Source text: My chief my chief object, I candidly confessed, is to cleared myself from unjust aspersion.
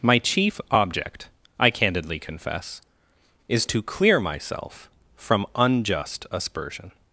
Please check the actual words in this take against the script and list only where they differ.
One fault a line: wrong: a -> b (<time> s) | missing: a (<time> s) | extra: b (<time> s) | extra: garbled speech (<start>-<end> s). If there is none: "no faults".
missing: my chief (0.6 s)
wrong: confessed -> confess (2.2 s)
wrong: cleared -> clear (3.8 s)